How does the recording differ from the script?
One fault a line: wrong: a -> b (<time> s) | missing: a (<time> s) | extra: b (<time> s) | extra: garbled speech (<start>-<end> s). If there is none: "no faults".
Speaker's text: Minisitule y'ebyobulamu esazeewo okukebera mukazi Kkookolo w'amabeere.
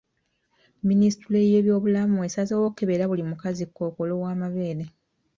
extra: buli (3.1 s)